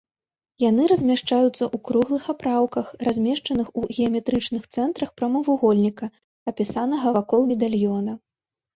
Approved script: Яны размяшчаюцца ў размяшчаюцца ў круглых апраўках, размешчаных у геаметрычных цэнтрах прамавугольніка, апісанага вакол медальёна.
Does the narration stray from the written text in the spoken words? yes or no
yes